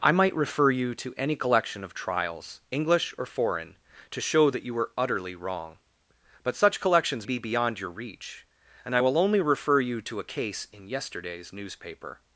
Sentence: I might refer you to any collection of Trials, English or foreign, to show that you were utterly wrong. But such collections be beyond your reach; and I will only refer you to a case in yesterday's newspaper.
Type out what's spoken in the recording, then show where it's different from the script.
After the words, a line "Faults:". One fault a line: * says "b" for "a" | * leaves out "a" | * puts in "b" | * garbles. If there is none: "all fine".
I might refer you to any collection of Trials, English or foreign, to show that you were utterly wrong. But such collections be beyond your reach; and I will only refer you to a case in yesterday's newspaper.
Faults:
all fine